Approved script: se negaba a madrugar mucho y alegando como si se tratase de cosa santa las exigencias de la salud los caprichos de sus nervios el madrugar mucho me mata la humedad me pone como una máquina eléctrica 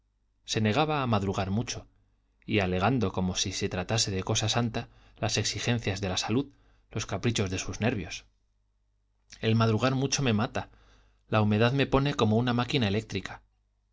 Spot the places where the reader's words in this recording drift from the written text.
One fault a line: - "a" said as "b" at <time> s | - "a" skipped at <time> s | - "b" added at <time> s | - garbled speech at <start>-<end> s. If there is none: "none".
none